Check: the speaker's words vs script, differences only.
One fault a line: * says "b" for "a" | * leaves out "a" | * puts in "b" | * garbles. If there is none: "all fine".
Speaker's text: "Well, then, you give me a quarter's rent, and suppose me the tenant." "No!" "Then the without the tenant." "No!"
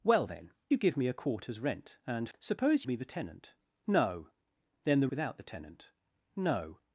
all fine